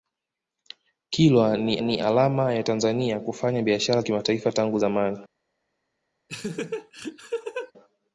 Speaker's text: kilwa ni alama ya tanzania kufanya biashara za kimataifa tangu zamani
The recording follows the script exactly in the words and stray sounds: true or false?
false